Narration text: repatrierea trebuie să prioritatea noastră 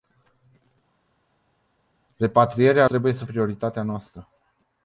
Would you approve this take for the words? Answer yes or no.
yes